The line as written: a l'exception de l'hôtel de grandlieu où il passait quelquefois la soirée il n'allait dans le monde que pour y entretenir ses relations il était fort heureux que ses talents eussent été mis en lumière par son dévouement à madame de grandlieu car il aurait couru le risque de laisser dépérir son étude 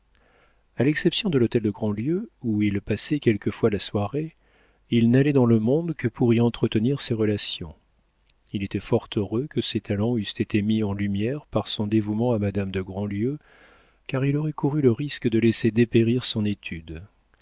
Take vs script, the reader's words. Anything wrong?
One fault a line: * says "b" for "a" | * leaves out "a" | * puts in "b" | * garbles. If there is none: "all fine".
all fine